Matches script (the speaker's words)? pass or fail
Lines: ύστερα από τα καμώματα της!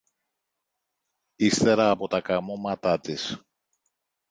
pass